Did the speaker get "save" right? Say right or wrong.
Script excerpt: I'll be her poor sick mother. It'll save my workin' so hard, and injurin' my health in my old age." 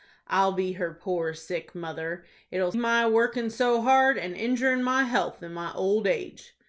wrong